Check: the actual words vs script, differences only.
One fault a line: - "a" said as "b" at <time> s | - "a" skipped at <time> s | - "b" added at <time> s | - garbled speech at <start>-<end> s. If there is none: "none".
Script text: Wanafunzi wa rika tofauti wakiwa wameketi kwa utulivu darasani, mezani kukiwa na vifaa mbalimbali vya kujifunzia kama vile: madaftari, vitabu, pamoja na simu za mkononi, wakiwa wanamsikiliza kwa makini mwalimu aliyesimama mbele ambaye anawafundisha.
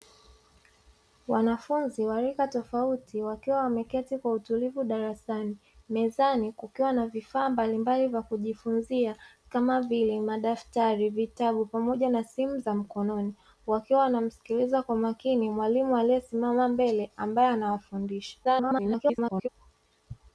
- garbled speech at 18.4-19.5 s